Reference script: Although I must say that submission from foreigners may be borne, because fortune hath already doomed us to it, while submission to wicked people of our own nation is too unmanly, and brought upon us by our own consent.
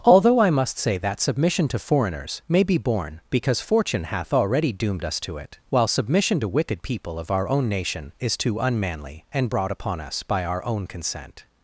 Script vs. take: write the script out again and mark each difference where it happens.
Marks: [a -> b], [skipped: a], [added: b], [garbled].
Although I must say that submission [from -> to] foreigners may be borne, because fortune hath already doomed us to it, while submission to wicked people of our own nation is too unmanly, and brought upon us by our own consent.